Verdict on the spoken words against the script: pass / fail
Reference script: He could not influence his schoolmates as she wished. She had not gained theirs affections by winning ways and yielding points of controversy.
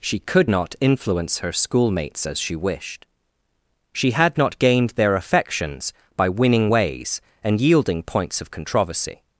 fail